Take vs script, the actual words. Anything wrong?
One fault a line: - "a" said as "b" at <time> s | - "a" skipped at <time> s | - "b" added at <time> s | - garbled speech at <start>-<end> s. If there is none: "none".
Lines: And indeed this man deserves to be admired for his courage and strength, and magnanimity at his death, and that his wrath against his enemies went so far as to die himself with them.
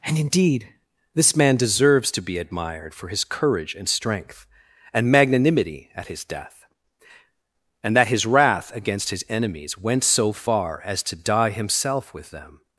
none